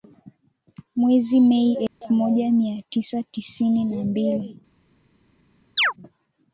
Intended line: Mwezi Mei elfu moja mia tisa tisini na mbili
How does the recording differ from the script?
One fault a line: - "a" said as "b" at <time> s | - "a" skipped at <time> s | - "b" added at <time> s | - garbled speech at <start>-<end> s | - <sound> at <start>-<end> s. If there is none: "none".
- dropout at 1.9-2.0 s
- chirp at 5.8-5.9 s